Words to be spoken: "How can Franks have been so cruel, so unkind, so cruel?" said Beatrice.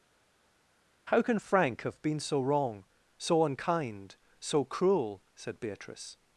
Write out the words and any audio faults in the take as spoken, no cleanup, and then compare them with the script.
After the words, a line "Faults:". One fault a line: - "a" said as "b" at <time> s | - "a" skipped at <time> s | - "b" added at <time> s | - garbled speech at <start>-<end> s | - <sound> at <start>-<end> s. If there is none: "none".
"How can Frank have been so wrong, so unkind, so cruel?" said Beatrice.
Faults:
- "Franks" said as "Frank" at 1.4 s
- "cruel" said as "wrong" at 2.4 s